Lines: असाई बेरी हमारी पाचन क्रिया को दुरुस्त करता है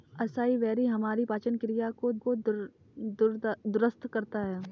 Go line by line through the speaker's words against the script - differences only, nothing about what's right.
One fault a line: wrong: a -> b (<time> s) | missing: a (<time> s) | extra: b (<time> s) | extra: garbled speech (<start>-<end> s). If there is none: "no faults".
extra: को (2.2 s)